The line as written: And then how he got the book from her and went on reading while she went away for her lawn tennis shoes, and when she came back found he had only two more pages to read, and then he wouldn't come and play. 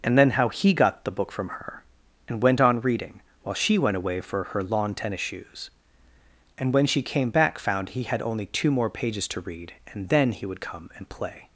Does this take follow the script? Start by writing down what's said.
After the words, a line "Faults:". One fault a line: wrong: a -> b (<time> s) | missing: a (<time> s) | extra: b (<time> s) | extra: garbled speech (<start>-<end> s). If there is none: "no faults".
And then how he got the book from her and went on reading while she went away for her lawn tennis shoes, and when she came back found he had only two more pages to read, and then he would come and play.
Faults:
wrong: wouldn't -> would (10.4 s)